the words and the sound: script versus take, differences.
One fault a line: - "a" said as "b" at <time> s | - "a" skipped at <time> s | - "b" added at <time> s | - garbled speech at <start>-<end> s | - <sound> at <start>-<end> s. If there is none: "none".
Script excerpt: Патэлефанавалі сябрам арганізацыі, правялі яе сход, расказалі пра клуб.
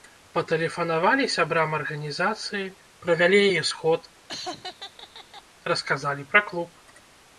- laugh at 4.3-5.4 s